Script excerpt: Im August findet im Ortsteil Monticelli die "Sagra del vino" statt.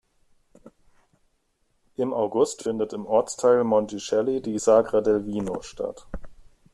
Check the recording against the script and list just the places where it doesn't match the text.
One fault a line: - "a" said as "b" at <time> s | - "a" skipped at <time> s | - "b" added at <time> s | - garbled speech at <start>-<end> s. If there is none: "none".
none